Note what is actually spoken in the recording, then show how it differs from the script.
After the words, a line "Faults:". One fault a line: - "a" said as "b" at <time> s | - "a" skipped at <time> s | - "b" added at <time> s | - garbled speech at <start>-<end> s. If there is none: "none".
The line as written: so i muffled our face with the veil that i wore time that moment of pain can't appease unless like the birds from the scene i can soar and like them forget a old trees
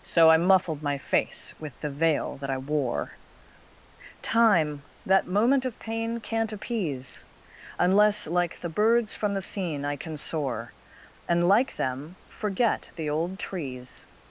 so i muffled my face with the veil that i wore time that moment of pain can't appease unless like the birds from the scene i can soar and like them forget the old trees
Faults:
- "our" said as "my" at 0.8 s
- "a" said as "the" at 12.9 s